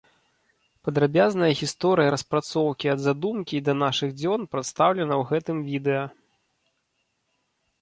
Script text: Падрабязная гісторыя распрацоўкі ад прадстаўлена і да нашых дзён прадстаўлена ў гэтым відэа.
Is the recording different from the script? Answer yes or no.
yes